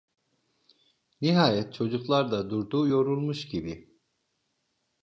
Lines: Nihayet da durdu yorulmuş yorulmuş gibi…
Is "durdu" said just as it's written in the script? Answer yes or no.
yes